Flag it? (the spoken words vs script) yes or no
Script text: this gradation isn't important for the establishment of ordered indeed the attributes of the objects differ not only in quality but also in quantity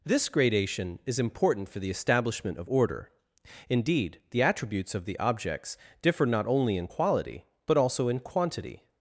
yes